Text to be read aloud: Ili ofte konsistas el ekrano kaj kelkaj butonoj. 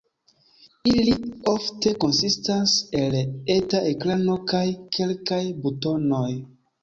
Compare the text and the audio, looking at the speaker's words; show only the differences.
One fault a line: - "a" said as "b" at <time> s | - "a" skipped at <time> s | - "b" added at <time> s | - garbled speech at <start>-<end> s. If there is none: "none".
- "eta" added at 3.6 s